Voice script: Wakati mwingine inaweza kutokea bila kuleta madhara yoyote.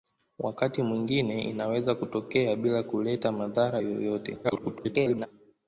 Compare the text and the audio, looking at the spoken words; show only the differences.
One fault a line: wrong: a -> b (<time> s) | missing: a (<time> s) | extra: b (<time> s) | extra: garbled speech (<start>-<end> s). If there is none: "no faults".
extra: garbled speech (4.4-5.3 s)